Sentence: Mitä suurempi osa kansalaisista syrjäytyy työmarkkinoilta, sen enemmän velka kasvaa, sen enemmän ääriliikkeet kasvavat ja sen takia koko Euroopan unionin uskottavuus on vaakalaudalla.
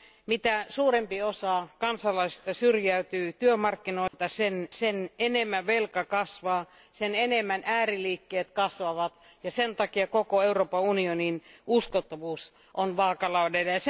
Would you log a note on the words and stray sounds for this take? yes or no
yes